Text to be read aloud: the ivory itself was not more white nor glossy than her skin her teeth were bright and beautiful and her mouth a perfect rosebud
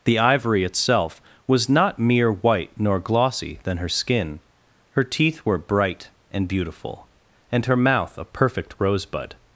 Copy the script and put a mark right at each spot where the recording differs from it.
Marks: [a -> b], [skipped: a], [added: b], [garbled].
the ivory itself was not [more -> mere] white nor glossy than her skin her teeth were bright and beautiful and her mouth a perfect rosebud